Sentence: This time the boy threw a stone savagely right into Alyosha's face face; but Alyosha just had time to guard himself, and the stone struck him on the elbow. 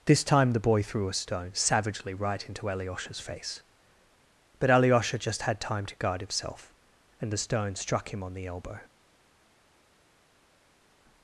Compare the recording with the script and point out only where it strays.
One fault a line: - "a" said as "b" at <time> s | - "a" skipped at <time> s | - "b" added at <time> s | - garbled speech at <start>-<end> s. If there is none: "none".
- "face" skipped at 3.6 s